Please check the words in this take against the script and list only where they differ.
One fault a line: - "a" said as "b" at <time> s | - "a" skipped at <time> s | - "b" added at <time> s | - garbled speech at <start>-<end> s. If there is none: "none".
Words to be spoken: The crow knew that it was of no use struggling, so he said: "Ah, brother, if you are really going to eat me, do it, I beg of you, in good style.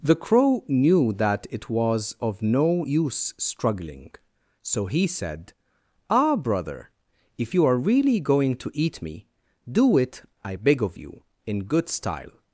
none